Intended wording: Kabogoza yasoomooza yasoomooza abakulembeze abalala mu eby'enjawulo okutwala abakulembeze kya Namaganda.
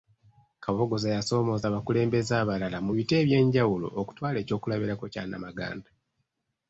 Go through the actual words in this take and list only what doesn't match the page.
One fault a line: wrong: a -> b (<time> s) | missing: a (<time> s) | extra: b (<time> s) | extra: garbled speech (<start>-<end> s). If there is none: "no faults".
missing: yasoomooza (1.6 s)
extra: biti (2.9 s)
wrong: abakulembeze -> ekyokulabirako (4.4 s)